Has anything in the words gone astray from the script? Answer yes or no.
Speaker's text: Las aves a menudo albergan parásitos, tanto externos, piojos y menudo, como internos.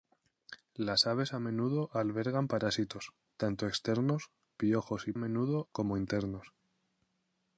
no